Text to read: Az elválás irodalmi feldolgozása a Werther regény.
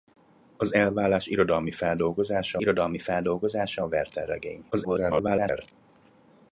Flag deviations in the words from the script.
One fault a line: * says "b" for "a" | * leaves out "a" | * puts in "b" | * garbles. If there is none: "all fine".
* puts in "irodalmi feldolgozása"
* garbles